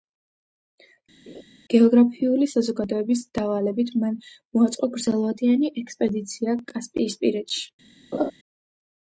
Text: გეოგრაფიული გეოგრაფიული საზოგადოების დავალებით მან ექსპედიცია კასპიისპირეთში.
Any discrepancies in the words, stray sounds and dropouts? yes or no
yes